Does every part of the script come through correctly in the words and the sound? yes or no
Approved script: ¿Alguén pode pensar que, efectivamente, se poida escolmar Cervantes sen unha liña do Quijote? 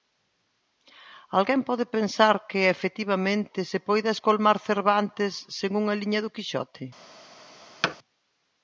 no